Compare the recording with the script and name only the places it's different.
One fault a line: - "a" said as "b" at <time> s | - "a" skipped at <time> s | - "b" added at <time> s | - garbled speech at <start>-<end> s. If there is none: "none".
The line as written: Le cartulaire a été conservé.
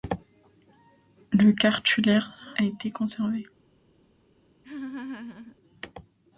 none